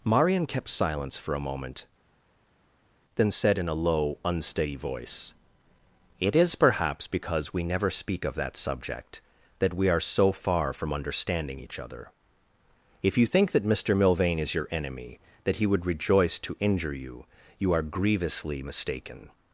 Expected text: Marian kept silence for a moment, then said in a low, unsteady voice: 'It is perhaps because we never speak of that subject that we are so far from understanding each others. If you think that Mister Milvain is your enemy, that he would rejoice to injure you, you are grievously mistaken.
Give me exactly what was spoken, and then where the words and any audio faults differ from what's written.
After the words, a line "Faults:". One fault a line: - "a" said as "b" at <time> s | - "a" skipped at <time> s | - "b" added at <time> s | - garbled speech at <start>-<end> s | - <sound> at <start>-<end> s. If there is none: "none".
Marian kept silence for a moment, then said in a low, unsteady voice: 'It is perhaps because we never speak of that subject that we are so far from understanding each other. If you think that Mister Milvain is your enemy, that he would rejoice to injure you, you are grievously mistaken.
Faults:
- "others" said as "other" at 11.8 s